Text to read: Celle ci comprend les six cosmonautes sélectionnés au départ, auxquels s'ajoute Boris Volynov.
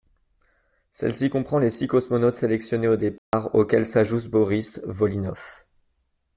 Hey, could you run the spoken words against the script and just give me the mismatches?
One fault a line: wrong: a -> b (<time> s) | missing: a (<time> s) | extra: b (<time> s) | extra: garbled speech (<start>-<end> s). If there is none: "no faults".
no faults